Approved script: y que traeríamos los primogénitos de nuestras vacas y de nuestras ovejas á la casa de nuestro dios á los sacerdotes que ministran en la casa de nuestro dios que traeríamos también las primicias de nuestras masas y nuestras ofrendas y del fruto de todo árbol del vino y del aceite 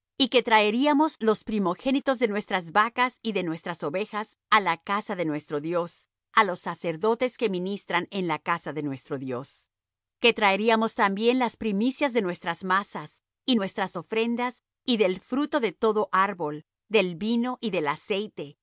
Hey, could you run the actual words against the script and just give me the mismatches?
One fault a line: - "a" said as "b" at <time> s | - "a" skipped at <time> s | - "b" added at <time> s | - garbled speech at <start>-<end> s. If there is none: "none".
none